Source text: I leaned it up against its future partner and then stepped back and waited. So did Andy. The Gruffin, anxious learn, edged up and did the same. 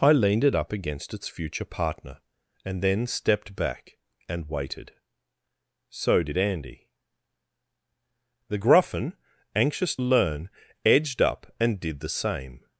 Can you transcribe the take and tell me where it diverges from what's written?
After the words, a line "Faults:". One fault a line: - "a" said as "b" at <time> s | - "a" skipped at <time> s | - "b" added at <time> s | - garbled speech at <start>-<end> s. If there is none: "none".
I leaned it up against its future partner and then stepped back and waited. So did Andy. The Gruffin, anxious learn, edged up and did the same.
Faults:
none